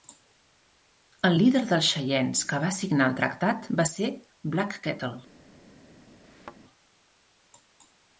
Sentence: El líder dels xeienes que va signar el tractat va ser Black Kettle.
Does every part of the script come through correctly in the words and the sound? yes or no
no